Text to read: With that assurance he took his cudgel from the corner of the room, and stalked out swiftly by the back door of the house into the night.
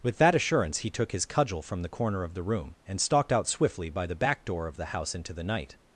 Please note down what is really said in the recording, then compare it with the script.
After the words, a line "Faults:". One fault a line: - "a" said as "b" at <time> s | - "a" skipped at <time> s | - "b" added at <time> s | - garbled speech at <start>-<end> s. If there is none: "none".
With that assurance he took his cudgel from the corner of the room, and stalked out swiftly by the back door of the house into the night.
Faults:
none